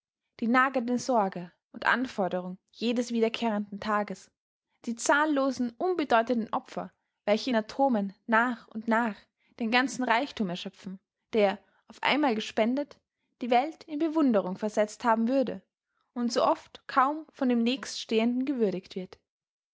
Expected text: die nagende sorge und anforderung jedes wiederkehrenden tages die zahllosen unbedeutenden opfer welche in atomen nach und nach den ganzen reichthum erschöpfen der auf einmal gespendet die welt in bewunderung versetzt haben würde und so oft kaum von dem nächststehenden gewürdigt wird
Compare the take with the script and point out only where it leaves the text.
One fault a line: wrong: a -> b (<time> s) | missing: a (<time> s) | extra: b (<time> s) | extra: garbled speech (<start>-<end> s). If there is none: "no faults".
no faults